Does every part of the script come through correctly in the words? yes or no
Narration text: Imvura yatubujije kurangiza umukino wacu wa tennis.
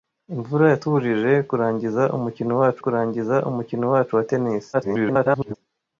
no